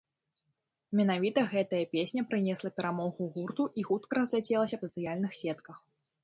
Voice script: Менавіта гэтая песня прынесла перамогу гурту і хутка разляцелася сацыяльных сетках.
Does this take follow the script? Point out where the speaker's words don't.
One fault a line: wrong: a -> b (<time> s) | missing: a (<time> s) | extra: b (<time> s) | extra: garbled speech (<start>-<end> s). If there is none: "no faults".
no faults